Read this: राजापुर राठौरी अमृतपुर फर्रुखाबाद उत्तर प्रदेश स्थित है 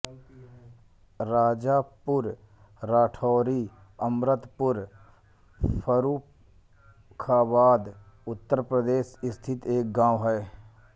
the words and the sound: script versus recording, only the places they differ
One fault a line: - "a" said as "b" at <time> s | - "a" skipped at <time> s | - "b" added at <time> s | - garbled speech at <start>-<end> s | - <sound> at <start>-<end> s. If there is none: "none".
- "एक गाँव" added at 9.8 s